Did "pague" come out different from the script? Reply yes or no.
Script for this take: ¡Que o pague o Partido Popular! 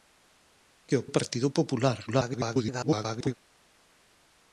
yes